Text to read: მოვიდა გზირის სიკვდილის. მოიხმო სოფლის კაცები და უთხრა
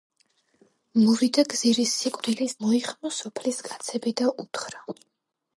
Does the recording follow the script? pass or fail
pass